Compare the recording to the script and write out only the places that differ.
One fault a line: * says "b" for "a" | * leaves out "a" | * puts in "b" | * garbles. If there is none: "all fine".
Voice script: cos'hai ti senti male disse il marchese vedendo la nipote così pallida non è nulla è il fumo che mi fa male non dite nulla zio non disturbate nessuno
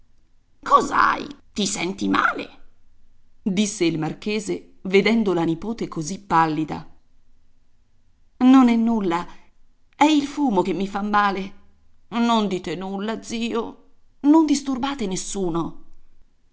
all fine